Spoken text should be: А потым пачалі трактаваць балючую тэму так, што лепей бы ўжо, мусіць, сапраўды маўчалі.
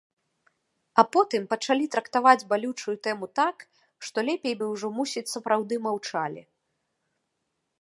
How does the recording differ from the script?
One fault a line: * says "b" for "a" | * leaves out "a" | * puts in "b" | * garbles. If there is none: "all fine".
all fine